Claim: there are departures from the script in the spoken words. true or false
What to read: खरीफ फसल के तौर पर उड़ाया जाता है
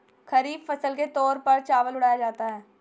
true